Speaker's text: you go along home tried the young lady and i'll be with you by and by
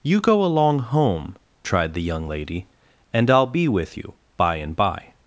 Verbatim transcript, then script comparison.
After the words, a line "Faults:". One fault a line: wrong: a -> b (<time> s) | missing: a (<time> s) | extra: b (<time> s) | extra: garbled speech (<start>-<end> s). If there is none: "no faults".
you go along home tried the young lady and i'll be with you by and by
Faults:
no faults